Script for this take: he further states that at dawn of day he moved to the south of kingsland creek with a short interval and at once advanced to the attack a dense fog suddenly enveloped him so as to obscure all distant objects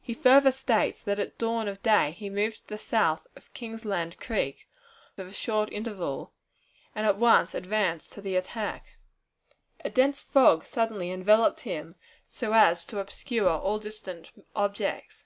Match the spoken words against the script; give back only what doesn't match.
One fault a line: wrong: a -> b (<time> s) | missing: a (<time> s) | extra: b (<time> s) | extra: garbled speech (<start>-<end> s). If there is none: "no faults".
no faults